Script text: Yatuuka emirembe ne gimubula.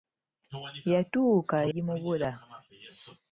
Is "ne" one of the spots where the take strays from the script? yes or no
yes